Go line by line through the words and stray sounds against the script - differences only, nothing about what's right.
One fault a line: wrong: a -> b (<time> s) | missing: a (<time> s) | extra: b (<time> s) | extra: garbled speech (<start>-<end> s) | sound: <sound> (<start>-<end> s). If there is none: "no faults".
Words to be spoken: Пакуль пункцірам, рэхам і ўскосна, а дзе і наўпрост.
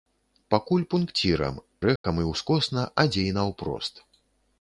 sound: dropout (2.0-2.0 s)